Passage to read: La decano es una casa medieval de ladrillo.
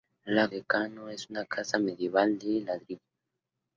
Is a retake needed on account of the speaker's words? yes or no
no